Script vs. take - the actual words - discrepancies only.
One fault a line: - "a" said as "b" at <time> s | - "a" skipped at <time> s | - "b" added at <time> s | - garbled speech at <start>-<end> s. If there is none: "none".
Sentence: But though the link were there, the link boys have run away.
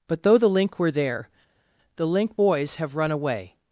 none